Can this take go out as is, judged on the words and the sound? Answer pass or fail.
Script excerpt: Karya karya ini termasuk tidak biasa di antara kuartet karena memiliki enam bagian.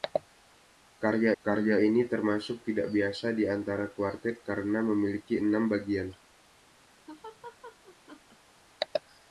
fail